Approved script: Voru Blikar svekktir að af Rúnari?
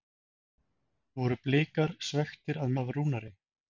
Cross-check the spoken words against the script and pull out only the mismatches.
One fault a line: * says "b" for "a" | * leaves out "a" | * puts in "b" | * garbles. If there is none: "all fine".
all fine